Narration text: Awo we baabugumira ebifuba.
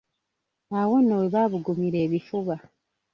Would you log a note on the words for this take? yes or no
yes